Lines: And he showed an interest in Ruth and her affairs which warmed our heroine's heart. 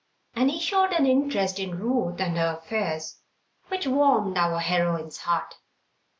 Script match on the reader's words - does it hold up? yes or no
yes